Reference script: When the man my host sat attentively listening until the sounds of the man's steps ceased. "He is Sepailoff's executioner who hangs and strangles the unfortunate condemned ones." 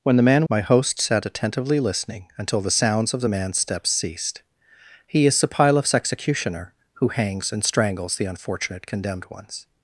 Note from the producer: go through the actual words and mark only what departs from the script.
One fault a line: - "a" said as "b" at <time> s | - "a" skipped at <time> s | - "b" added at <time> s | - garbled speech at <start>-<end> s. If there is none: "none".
none